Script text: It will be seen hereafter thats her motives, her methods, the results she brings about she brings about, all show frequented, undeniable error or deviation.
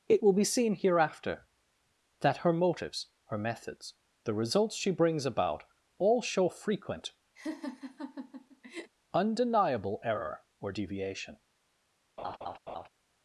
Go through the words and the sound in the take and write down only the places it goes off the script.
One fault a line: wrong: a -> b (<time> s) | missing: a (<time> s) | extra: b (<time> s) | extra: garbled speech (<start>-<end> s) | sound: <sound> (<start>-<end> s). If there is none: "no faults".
wrong: thats -> that (2.2 s)
missing: she brings about (5.6 s)
wrong: frequented -> frequent (6.5 s)
sound: laugh (7.4-8.9 s)
sound: laugh (12.2-12.9 s)